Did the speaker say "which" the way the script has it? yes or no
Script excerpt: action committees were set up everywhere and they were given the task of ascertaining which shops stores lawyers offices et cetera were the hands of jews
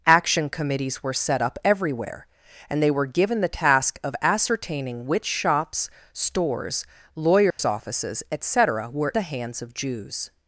yes